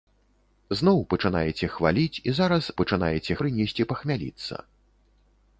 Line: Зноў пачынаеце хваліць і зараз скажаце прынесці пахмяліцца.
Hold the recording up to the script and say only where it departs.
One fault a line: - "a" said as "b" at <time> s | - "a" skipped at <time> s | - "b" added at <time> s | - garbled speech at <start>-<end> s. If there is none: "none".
- "скажаце" said as "пачынаеце" at 2.8 s